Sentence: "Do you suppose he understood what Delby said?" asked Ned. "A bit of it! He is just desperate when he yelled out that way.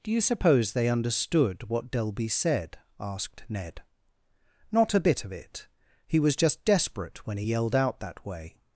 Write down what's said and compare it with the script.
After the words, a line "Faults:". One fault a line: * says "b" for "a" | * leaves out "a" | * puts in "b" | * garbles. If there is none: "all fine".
"Do you suppose they understood what Delby said?" asked Ned. "Not a bit of it! He was just desperate when he yelled out that way.
Faults:
* says "they" for "he"
* puts in "Not"
* says "was" for "is"